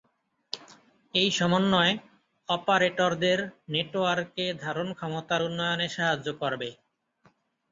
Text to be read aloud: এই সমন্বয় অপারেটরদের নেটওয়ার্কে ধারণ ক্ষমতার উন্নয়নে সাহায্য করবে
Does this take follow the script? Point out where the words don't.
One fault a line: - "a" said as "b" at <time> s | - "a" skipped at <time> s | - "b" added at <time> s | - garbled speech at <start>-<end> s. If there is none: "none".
none